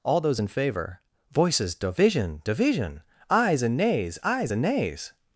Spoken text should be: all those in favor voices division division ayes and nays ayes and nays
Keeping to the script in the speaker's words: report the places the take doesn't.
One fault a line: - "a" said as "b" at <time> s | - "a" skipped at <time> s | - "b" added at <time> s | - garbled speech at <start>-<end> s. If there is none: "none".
none